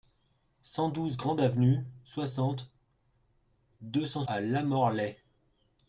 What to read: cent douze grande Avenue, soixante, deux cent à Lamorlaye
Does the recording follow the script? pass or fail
pass